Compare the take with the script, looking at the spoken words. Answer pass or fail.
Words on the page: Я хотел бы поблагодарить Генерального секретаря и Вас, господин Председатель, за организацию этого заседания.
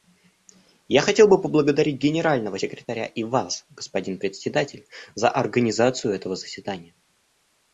pass